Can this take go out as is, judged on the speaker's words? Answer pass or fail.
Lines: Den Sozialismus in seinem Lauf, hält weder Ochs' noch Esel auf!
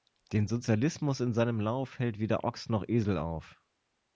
pass